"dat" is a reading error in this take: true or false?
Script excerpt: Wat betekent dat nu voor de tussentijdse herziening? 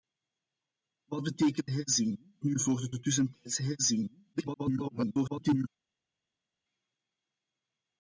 true